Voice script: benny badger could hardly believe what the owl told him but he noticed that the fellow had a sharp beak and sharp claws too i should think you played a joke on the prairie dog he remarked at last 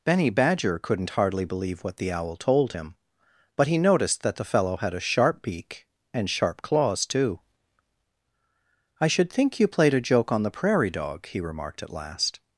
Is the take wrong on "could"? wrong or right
wrong